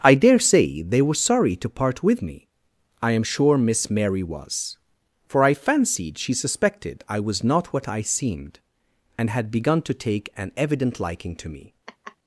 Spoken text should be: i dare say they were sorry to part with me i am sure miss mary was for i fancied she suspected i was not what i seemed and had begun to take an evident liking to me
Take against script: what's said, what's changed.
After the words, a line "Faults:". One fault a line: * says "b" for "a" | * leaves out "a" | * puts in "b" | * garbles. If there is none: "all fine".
i dare say they were sorry to part with me i am sure miss mary was for i fancied she suspected i was not what i seemed and had begun to take an evident liking to me
Faults:
all fine